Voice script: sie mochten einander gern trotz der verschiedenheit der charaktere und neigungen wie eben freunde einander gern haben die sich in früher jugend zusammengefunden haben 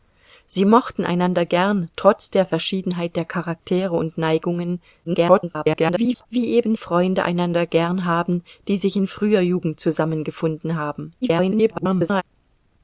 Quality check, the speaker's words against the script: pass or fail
fail